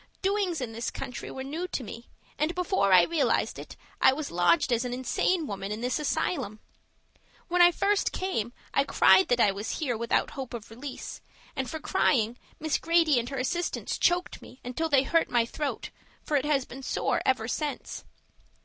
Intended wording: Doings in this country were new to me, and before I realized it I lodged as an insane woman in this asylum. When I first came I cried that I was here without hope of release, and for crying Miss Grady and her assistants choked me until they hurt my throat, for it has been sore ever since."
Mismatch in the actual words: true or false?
true